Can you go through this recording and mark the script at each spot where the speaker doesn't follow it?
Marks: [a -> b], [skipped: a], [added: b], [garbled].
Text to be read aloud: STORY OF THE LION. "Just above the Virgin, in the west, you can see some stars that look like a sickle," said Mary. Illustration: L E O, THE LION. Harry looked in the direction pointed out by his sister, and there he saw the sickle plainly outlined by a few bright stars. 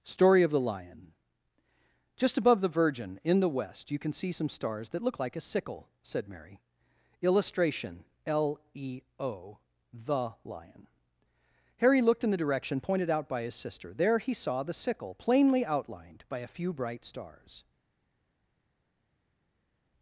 STORY OF THE LION. "Just above the Virgin, in the west, you can see some stars that look like a sickle," said Mary. Illustration: L E O, THE LION. Harry looked in the direction pointed out by his sister, [skipped: and] there he saw the sickle plainly outlined by a few bright stars.